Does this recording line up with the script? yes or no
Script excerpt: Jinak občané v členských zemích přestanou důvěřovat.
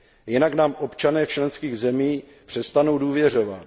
no